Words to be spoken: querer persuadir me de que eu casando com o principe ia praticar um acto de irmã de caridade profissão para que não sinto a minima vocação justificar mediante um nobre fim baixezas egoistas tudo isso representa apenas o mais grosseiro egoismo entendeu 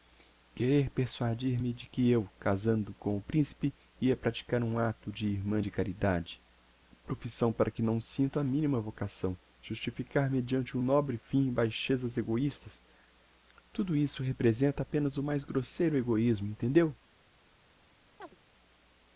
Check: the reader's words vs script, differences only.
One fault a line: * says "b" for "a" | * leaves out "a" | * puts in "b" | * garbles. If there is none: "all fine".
all fine